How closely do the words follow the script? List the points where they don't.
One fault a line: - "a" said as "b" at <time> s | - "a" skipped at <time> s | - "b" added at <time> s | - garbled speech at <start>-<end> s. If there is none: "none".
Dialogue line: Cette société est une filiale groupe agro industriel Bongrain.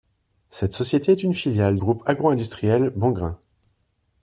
none